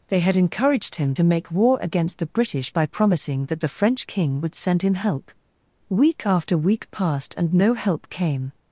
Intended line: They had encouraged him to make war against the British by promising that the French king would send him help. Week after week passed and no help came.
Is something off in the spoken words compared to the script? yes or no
no